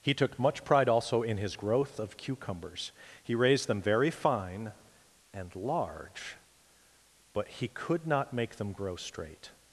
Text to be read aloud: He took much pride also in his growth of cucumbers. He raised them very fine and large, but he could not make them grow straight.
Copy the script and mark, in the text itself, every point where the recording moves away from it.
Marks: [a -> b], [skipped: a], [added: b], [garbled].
He took much pride also in his growth of cucumbers. He raised them very fine and large, but he could not make them grow straight.